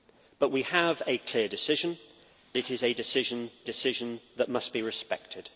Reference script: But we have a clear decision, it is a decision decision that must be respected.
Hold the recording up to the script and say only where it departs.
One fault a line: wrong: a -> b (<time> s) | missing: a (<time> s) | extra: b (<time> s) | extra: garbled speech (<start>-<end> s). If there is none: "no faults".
no faults